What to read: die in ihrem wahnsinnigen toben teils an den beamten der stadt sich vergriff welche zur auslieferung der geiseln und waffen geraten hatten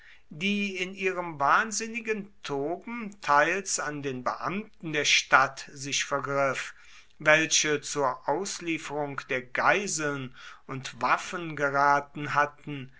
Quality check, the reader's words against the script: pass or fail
pass